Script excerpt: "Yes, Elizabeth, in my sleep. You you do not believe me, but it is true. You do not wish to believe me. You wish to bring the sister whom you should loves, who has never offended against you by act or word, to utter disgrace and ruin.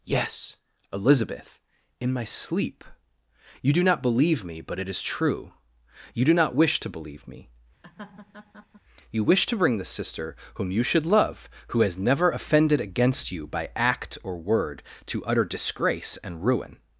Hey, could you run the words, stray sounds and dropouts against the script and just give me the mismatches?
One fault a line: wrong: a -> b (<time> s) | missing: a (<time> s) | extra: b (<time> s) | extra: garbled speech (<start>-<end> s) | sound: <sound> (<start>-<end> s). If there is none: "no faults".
missing: you (3.7 s)
sound: laugh (7.8-8.8 s)
wrong: loves -> love (11.0 s)